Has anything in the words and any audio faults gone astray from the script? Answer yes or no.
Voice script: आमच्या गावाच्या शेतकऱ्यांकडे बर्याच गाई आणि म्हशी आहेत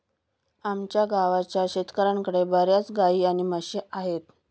no